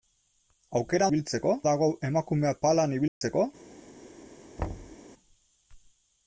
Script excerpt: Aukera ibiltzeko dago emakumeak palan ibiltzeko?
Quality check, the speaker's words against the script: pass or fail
pass